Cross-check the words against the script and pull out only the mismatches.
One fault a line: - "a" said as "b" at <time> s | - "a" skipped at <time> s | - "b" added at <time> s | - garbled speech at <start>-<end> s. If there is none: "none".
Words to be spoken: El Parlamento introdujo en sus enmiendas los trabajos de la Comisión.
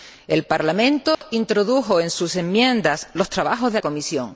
- "la" skipped at 3.8 s